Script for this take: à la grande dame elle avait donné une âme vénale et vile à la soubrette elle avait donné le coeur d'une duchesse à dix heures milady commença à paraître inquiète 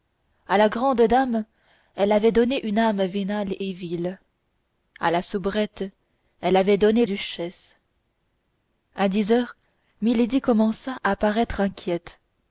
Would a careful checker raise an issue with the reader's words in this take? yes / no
yes